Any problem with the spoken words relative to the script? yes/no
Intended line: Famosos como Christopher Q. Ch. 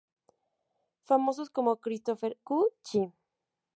no